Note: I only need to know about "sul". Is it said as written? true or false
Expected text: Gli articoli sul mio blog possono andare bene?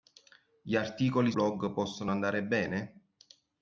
false